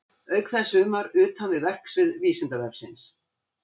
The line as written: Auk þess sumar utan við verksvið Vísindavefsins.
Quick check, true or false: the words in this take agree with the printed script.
true